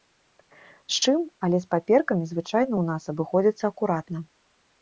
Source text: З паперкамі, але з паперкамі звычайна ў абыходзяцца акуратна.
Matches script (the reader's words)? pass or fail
fail